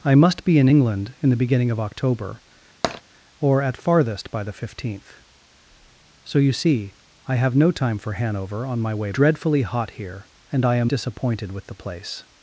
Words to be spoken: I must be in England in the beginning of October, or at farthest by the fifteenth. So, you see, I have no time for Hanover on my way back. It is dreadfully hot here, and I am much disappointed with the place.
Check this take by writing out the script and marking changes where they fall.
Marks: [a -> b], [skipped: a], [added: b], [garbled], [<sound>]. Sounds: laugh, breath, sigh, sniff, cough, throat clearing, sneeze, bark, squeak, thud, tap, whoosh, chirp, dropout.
I must be in England in the beginning of October, [tap] or at farthest by the fifteenth. So, you see, I have no time for Hanover on my way [skipped: back. It is] dreadfully hot here, and I am [skipped: much] disappointed with the place.